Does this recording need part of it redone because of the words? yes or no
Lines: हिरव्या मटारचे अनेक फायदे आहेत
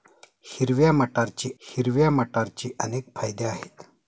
yes